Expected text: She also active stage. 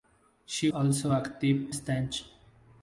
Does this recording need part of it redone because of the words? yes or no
no